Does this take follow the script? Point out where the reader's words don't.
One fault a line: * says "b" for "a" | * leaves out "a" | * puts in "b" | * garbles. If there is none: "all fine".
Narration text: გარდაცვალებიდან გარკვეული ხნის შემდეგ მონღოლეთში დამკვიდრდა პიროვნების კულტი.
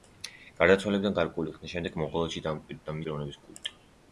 all fine